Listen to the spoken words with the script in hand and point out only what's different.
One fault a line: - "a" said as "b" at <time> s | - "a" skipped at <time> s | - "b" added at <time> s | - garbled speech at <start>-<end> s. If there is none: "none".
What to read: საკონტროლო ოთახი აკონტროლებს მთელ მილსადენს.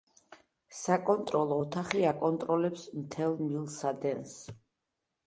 none